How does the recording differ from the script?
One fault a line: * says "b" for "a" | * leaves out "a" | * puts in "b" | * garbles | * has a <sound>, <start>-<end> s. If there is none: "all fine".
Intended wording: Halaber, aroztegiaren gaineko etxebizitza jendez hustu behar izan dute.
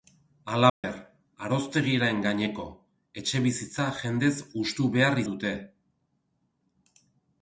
* has a dropout, 0.7-0.8 s
* leaves out "izan"